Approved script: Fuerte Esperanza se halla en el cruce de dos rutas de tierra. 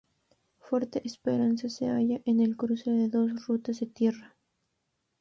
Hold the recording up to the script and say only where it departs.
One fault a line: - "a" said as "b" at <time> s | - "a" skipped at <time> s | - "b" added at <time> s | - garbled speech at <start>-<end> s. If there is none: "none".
none